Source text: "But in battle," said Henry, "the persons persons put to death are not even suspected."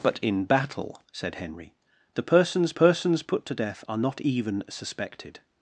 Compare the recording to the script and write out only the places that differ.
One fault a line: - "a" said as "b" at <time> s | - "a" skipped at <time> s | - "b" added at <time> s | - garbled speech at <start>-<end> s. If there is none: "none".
none